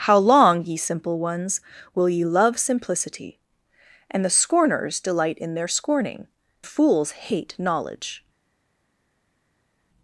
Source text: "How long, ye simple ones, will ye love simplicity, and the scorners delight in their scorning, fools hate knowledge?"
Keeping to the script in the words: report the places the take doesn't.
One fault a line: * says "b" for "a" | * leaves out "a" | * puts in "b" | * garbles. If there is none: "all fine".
all fine